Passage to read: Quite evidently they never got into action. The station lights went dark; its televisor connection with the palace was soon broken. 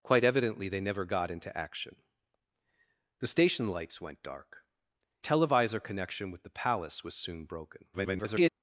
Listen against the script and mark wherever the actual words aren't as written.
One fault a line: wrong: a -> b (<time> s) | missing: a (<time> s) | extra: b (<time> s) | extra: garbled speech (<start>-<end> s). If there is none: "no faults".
missing: its (4.6 s)
extra: garbled speech (7.9-8.5 s)